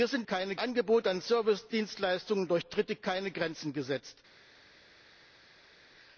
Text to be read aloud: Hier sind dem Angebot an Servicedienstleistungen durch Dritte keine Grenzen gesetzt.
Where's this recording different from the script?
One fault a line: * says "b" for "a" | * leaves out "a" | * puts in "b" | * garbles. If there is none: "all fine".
* says "keine" for "dem"